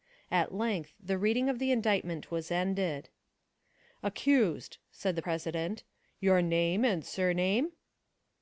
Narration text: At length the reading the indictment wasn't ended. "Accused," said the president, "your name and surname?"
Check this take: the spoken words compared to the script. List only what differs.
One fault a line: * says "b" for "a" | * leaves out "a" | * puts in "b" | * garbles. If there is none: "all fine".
* puts in "of"
* says "was" for "wasn't"